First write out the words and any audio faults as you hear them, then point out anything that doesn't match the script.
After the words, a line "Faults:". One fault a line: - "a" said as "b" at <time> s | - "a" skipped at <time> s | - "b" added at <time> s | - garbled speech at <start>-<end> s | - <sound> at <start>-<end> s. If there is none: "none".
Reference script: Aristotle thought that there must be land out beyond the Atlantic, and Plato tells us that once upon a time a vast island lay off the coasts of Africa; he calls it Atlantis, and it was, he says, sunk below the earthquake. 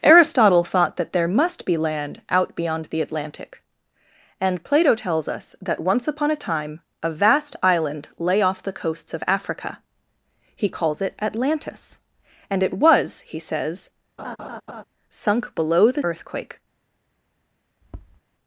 Aristotle thought that there must be land out beyond the Atlantic, and Plato tells us that once upon a time a vast island lay off the coasts of Africa; he calls it Atlantis, and it was, he says, sunk below the earthquake.
Faults:
- laugh at 14.2-14.8 s
- tap at 17.8-18.2 s